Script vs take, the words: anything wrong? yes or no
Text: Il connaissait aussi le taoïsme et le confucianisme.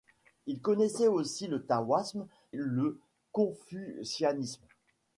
yes